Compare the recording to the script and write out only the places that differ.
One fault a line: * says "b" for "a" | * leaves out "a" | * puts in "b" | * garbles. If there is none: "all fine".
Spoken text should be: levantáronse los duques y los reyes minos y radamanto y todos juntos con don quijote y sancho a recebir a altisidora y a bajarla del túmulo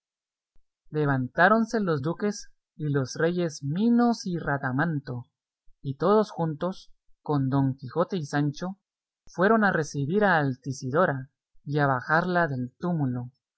* puts in "fueron"